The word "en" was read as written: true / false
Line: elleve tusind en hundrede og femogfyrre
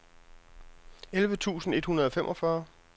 false